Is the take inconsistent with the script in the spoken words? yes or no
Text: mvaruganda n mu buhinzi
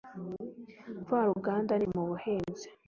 no